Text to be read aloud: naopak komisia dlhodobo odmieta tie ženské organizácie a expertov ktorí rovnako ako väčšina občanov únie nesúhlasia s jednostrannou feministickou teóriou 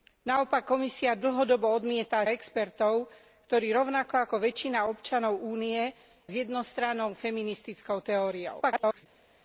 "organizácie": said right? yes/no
no